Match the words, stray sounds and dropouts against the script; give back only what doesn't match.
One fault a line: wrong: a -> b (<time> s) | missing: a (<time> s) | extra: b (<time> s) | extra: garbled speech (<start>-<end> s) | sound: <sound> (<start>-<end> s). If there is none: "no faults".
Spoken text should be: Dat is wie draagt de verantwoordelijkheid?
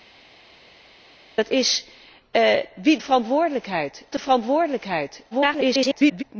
wrong: draagt -> verantwoordelijkheid (3.0 s)
extra: garbled speech (5.3-6.2 s)